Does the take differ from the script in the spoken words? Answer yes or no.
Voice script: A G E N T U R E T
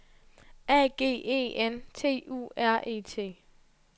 no